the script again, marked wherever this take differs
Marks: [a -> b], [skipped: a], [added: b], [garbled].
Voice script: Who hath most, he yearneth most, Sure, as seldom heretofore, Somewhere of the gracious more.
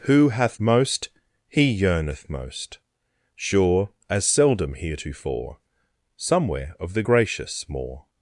Who hath most, he yearneth most, Sure, as seldom heretofore, Somewhere of the gracious more.